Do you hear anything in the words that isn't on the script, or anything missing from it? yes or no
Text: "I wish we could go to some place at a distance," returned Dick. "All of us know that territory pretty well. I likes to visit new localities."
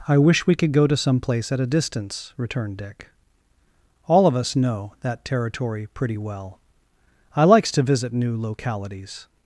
no